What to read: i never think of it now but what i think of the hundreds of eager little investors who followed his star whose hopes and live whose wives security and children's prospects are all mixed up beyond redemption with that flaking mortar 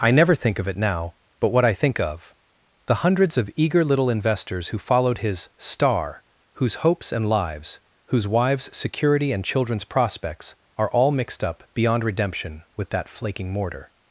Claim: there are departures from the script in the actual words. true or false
true